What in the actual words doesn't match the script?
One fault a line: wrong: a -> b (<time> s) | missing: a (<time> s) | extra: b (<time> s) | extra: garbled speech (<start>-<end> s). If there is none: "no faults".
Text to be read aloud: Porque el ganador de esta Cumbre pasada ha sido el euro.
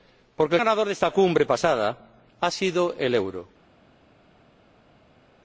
no faults